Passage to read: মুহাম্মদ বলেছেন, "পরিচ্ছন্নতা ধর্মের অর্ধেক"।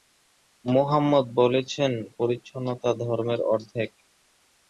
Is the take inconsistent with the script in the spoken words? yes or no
no